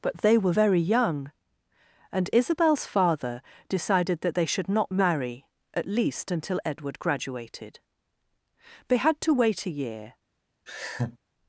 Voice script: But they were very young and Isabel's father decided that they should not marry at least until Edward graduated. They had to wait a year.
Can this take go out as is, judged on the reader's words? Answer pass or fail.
pass